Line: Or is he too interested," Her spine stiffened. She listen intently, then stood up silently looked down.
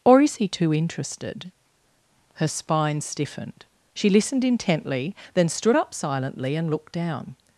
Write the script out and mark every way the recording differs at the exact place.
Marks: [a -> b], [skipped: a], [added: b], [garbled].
Or is he too interested," Her spine stiffened. She [listen -> listened] intently, then stood up silently [added: and] looked down.